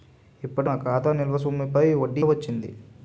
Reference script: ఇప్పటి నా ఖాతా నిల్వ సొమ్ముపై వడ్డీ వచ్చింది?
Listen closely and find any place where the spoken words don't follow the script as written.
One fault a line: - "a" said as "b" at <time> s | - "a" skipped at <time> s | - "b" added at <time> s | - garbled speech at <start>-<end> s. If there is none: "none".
none